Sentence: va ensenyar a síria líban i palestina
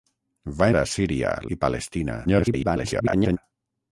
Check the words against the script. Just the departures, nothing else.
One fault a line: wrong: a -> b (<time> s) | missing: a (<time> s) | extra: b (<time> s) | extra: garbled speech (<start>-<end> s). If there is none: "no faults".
missing: ensenyar (0.7 s)
missing: líban (1.3 s)
extra: garbled speech (2.3-3.4 s)